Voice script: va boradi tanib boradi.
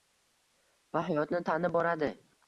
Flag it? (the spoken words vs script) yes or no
yes